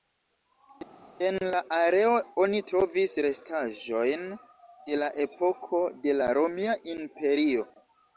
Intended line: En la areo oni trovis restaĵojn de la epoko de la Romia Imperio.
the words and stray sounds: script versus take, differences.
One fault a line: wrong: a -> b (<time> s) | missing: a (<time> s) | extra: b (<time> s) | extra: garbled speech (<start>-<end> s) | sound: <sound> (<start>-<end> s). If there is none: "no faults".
no faults